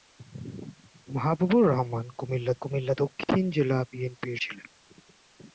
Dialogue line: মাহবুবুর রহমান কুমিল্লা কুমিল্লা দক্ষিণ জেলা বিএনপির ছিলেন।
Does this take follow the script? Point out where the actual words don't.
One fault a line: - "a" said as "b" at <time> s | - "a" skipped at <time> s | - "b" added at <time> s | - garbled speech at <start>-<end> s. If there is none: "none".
none